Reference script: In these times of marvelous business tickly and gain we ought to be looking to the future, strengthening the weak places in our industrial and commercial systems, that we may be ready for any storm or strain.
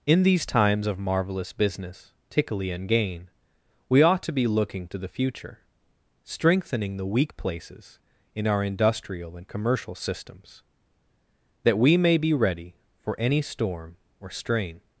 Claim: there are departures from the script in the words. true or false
false